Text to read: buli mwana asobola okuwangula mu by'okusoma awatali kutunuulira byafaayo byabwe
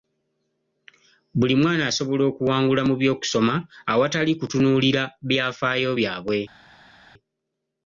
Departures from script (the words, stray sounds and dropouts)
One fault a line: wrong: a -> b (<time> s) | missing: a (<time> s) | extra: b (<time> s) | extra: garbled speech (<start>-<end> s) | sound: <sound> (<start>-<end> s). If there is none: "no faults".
no faults